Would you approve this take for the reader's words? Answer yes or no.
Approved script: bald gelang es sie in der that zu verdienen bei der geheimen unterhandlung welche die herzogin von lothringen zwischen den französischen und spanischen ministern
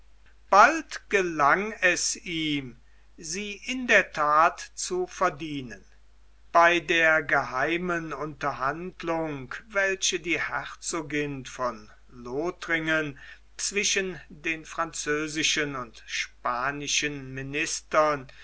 no